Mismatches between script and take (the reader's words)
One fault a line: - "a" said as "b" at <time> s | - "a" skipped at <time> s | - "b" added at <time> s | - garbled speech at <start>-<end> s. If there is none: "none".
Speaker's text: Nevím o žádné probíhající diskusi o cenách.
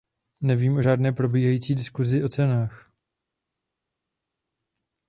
none